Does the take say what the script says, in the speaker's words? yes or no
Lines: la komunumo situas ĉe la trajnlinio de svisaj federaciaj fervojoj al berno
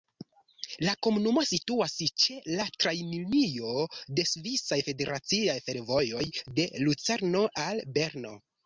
no